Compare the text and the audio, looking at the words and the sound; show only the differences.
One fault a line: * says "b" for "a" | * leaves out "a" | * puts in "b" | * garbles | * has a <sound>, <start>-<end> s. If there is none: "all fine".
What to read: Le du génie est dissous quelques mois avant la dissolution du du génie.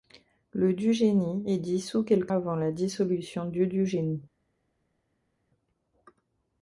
* leaves out "mois"